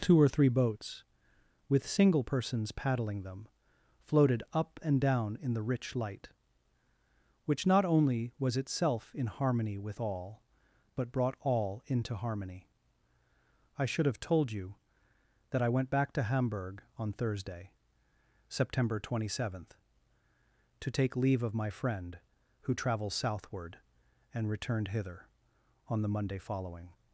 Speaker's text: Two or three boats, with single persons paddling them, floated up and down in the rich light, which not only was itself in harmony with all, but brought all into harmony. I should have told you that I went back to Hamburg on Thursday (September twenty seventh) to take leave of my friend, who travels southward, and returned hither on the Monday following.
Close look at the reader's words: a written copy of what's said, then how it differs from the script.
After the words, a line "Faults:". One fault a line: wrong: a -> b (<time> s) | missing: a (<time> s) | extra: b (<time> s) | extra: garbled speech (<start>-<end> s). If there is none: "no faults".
Two or three boats, with single persons paddling them, floated up and down in the rich light, which not only was itself in harmony with all, but brought all into harmony. I should have told you that I went back to Hamburg on Thursday (September twenty seventh) to take leave of my friend, who travels southward, and returned hither on the Monday following.
Faults:
no faults